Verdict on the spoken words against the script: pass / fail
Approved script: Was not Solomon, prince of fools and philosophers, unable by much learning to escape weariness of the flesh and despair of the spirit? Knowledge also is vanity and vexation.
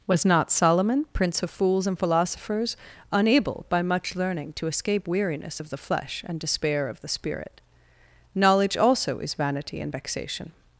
pass